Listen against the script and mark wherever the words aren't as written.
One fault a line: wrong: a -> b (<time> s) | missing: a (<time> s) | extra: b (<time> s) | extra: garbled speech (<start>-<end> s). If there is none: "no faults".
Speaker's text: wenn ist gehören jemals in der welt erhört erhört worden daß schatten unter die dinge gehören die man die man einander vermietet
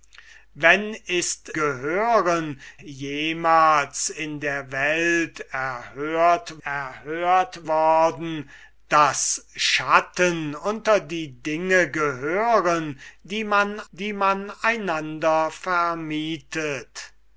no faults